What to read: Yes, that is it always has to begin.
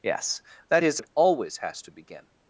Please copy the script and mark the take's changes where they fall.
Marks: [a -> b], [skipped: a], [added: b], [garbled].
Yes, that is it always has to begin.